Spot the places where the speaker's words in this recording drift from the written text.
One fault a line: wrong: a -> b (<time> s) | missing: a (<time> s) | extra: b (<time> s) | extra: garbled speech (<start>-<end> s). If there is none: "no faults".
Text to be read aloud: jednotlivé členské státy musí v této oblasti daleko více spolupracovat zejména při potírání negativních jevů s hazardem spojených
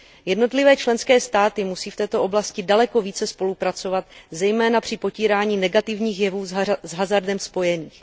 no faults